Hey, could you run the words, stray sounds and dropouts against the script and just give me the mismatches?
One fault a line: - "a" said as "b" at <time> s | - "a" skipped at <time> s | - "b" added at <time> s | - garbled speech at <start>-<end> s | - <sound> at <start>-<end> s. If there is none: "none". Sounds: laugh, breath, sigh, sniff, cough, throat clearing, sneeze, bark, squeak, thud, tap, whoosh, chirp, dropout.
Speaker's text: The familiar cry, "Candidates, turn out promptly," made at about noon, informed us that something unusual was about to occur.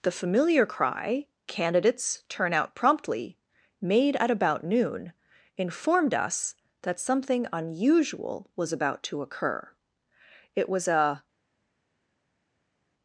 - "It was a" added at 10.6 s